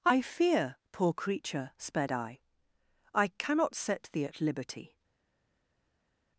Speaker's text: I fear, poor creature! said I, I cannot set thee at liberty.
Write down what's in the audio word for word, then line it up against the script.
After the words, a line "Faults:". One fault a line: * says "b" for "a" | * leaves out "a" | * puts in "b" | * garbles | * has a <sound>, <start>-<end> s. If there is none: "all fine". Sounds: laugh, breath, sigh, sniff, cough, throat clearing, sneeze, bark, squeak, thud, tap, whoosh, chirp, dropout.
I fear, poor creature! sped I, I cannot set thee at liberty.
Faults:
* says "sped" for "said"